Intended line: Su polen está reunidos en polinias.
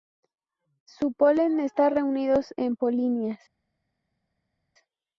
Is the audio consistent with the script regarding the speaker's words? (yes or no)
yes